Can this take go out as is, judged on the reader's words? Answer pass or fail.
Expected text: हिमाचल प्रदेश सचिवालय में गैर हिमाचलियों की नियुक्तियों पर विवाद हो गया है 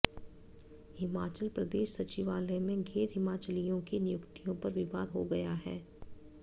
pass